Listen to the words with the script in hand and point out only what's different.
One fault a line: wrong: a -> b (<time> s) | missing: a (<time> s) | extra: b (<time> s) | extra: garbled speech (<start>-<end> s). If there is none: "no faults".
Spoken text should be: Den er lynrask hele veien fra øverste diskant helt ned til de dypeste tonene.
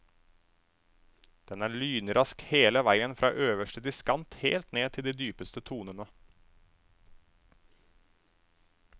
no faults